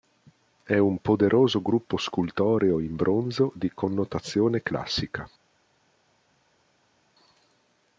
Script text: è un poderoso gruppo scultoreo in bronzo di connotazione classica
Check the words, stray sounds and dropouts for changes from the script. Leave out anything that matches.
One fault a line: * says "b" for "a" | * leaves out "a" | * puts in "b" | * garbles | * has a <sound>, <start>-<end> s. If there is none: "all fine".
all fine